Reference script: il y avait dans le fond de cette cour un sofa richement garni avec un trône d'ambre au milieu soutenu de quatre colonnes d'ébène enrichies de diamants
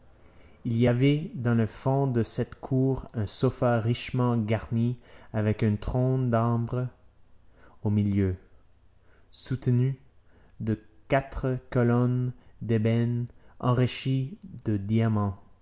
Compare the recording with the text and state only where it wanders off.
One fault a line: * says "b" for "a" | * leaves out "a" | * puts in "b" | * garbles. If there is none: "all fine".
all fine